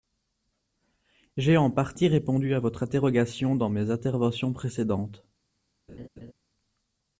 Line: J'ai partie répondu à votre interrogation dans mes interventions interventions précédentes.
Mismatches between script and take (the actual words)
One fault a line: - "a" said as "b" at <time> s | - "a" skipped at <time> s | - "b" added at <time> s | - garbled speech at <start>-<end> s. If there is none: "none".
- "en" added at 1.6 s
- "interventions" skipped at 4.5 s